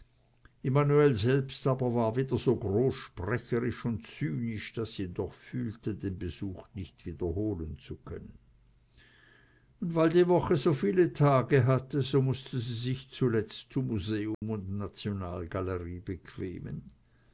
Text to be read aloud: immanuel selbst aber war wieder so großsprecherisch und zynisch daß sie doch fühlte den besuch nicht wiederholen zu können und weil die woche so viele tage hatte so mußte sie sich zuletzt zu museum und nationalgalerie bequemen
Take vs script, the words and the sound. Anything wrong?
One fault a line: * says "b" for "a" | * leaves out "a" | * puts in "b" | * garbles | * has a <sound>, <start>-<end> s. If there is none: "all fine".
* has a dropout, 14.3-14.4 s